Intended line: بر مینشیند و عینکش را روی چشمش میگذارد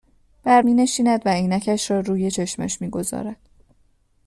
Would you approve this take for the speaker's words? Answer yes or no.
yes